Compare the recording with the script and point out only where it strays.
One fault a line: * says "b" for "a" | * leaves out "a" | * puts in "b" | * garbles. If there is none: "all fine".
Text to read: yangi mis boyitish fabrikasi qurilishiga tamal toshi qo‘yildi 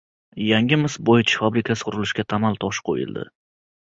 all fine